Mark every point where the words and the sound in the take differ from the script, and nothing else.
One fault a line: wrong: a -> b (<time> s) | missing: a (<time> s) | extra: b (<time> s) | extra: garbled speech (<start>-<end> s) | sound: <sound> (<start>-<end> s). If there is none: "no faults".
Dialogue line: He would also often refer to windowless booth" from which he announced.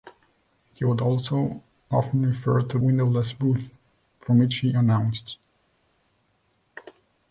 no faults